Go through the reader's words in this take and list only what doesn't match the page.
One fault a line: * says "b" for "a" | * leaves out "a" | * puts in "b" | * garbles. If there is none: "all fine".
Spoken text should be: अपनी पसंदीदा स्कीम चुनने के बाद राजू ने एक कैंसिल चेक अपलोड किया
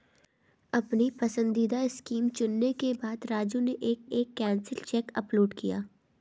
* puts in "एक"